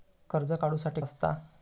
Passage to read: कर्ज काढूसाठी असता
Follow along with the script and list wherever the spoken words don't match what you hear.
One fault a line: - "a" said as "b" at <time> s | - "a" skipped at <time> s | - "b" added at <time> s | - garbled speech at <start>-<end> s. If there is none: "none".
none